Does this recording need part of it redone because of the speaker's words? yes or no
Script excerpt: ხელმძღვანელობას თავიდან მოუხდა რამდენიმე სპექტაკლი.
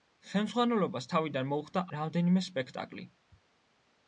no